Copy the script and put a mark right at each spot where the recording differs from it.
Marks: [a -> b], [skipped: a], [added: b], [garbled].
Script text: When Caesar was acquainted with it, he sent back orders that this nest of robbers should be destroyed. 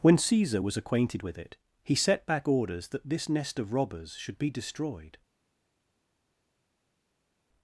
When Caesar was acquainted with it, he [sent -> set] back orders that this nest of robbers should be destroyed.